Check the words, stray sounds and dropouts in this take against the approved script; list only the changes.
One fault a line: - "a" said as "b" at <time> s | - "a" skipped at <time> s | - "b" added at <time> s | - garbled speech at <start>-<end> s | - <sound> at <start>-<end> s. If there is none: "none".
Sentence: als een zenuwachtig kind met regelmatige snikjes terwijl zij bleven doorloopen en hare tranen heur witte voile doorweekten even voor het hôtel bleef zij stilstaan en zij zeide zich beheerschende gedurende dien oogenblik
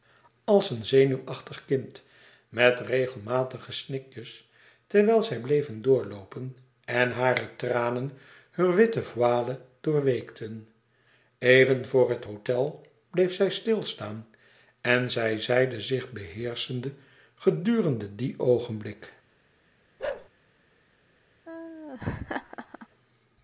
- bark at 20.0-20.3 s
- laugh at 21.4-22.9 s